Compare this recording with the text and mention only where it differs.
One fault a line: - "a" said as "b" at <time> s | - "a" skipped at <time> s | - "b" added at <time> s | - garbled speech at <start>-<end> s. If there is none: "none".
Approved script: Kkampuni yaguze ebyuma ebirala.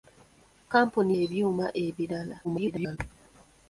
- "yaguze" skipped at 1.1 s
- garbled speech at 2.4-3.0 s